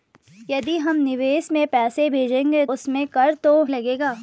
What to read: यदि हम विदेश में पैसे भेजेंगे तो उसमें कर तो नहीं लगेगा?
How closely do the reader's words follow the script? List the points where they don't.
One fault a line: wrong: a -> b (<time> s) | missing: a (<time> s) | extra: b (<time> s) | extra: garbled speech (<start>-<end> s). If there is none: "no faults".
missing: तो (2.6 s)
missing: नहीं (3.5 s)